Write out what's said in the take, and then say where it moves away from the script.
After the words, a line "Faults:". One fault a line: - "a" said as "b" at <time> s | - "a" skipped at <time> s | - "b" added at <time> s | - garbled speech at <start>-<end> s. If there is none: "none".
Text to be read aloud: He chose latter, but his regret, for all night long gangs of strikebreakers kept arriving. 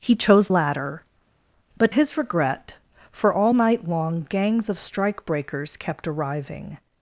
He chose latter, but his regret, for all night long gangs of strikebreakers kept arriving.
Faults:
none